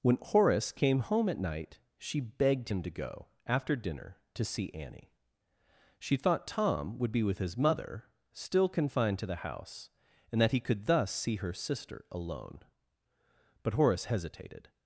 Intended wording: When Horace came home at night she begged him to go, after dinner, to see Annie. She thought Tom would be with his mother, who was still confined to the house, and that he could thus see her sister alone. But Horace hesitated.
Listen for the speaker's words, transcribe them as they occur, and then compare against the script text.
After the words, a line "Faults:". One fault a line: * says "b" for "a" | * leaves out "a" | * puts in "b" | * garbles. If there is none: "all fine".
When Horace came home at night she begged him to go, after dinner, to see Annie. She thought Tom would be with his mother, still confined to the house, and that he could thus see her sister alone. But Horace hesitated.
Faults:
* leaves out "who was"